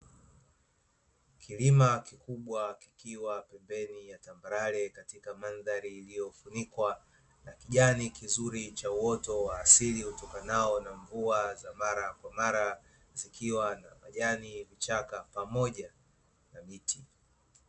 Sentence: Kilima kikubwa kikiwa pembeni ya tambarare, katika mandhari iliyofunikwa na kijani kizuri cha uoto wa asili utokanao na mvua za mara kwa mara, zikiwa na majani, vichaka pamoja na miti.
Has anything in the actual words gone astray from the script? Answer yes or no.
no